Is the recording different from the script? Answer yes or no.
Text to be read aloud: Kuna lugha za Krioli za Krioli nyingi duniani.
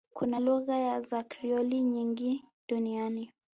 yes